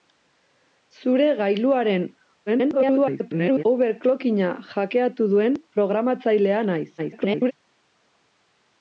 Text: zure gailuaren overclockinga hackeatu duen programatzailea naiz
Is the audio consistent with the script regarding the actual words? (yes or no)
no